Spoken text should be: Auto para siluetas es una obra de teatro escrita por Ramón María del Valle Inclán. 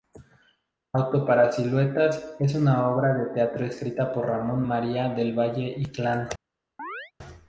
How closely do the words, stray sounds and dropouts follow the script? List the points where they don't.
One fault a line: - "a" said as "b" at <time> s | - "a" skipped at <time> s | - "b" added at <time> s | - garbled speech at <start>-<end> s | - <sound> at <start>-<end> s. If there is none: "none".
- chirp at 6.8-7.1 s